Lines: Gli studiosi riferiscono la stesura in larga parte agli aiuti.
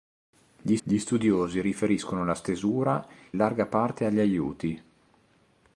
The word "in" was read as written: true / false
false